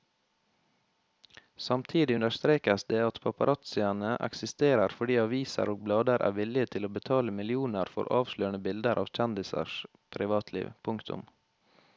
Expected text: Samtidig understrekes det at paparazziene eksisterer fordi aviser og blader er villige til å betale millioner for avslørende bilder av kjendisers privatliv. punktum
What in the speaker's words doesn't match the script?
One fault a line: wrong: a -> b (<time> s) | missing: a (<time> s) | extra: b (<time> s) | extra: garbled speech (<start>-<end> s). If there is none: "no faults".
no faults